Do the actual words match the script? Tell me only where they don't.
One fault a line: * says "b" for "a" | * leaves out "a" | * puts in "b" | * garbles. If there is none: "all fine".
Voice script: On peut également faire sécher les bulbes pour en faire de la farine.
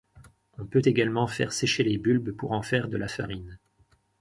all fine